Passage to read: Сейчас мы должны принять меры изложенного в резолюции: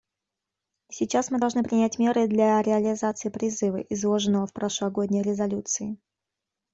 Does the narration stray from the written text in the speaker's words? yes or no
yes